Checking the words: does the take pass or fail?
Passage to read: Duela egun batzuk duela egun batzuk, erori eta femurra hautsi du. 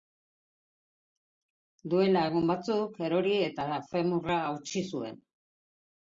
fail